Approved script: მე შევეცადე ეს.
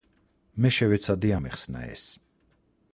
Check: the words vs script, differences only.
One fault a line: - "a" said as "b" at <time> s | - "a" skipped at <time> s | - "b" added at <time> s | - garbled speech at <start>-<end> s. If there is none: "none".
- "ამეხსნა" added at 1.4 s